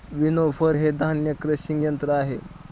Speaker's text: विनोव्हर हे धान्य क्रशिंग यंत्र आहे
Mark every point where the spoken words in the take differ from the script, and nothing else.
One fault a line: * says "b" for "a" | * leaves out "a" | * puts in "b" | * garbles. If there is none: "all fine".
all fine